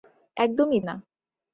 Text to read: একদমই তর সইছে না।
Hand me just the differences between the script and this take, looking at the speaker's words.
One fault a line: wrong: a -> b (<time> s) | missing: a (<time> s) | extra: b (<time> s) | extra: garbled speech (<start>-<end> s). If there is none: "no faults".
missing: তর সইছে (0.8 s)